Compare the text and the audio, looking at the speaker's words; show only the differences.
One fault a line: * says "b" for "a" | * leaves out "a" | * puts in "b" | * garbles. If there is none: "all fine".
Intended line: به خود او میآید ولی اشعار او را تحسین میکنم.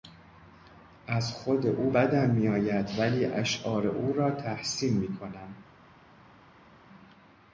* says "از" for "به"
* puts in "بدم"